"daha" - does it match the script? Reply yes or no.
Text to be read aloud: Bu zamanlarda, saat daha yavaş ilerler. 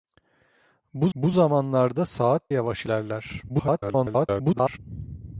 no